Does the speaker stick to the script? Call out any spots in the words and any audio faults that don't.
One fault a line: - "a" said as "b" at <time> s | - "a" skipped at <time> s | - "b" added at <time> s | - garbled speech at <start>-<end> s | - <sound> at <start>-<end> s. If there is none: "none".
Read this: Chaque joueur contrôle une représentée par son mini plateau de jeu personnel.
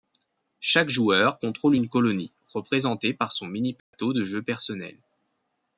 - "colonie" added at 1.9 s
- dropout at 3.8-3.9 s